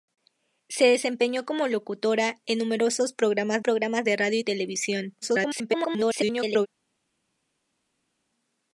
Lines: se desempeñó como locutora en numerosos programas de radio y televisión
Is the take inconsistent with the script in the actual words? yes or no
yes